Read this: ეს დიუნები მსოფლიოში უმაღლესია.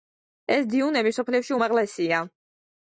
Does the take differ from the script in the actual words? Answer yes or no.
no